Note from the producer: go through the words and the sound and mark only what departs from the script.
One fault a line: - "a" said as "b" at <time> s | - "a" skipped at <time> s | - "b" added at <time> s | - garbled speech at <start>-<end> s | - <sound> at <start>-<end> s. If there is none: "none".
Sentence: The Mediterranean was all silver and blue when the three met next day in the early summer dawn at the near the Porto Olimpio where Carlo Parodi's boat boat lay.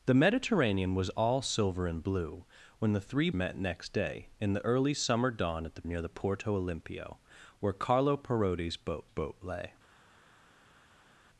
none